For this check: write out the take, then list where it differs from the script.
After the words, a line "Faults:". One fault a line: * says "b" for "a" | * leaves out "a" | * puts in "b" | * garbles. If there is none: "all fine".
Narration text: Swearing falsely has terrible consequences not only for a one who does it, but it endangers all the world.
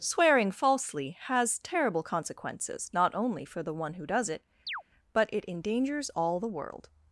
Swearing falsely has terrible consequences not only for the one who does it, but it endangers all the world.
Faults:
* says "the" for "a"